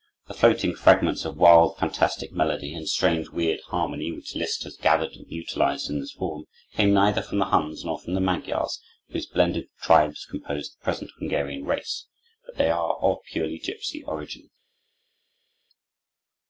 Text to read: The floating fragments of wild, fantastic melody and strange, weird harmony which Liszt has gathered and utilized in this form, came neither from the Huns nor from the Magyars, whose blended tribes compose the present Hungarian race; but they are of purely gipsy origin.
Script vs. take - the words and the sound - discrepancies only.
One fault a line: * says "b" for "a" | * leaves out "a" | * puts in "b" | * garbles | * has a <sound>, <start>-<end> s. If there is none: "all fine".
all fine